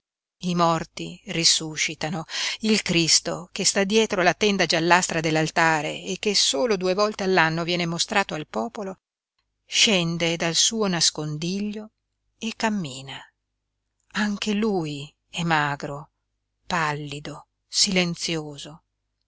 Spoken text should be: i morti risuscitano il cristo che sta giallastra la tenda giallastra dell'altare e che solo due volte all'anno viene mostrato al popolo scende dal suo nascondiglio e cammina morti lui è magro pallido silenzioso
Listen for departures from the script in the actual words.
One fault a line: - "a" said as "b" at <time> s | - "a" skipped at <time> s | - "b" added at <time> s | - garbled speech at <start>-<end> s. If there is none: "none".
- "giallastra" said as "dietro" at 3.8 s
- "morti" said as "anche" at 14.1 s